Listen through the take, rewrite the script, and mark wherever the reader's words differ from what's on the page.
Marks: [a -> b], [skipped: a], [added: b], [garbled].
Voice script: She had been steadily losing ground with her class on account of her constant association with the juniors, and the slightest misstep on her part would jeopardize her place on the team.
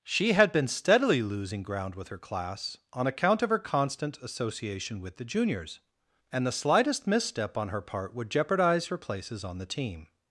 She had been steadily losing ground with her class on account of her constant association with the juniors, and the slightest misstep on her part would jeopardize her [place -> places] on the team.